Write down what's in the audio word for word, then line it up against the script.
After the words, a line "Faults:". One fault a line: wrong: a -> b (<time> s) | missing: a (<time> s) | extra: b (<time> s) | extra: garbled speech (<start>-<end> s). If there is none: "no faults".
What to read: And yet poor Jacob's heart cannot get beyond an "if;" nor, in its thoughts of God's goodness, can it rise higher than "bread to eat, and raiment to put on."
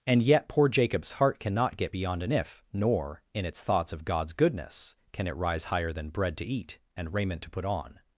And yet poor Jacob's heart cannot get beyond an "if;" nor, in its thoughts of God's goodness, can it rise higher than "bread to eat, and raiment to put on."
Faults:
no faults